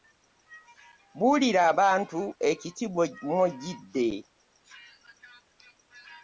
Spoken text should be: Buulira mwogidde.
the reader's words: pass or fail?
fail